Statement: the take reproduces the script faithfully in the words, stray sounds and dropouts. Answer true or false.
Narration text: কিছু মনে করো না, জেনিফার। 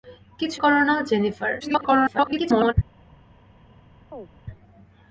false